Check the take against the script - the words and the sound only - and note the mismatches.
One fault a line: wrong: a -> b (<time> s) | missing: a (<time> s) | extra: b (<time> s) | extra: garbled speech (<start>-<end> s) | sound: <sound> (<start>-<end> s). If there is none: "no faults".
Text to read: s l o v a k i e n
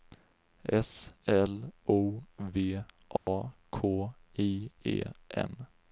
sound: dropout (3.2-3.3 s)